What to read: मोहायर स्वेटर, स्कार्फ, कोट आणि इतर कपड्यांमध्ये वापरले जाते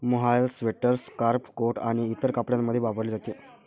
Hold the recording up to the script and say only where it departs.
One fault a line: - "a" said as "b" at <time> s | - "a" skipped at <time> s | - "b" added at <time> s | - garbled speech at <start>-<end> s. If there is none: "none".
none